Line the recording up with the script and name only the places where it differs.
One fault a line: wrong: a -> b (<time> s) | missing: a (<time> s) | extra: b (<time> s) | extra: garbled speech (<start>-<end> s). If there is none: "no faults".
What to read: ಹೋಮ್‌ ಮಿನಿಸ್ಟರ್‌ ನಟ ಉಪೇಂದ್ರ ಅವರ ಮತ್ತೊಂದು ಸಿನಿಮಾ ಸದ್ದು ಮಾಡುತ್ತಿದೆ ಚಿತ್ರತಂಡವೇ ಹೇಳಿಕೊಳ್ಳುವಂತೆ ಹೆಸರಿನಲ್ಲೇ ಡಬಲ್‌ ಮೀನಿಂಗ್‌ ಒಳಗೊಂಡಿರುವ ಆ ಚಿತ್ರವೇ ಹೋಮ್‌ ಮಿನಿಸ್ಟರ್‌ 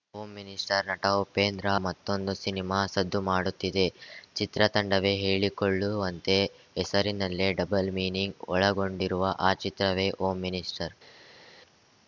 missing: ಅವರ (1.7 s)